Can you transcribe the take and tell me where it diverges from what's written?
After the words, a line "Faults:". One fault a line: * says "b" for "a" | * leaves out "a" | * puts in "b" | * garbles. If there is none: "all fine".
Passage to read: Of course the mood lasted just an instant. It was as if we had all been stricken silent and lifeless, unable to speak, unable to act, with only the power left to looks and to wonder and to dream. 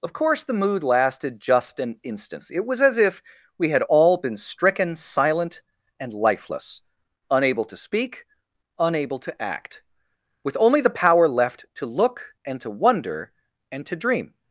Of course the mood lasted just an instant. It was as if we had all been stricken silent and lifeless, unable to speak, unable to act, with only the power left to look and to wonder and to dream.
Faults:
* says "look" for "looks"